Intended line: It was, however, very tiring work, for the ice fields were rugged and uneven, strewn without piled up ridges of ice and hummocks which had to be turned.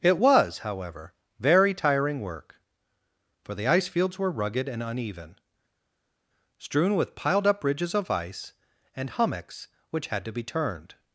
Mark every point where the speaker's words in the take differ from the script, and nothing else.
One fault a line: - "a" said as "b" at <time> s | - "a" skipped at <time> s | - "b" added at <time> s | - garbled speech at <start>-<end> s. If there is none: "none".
- "without" said as "with" at 6.9 s